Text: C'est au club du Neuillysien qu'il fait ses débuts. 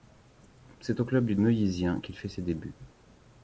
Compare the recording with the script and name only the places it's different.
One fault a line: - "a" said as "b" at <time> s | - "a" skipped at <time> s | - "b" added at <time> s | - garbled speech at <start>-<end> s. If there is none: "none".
none